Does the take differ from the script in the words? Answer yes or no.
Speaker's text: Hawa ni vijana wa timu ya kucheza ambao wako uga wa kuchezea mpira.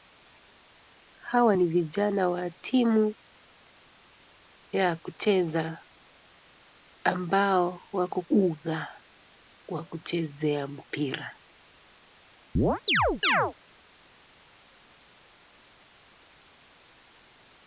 no